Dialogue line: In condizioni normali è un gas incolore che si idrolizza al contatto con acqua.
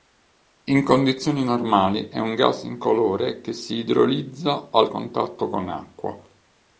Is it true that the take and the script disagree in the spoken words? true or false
false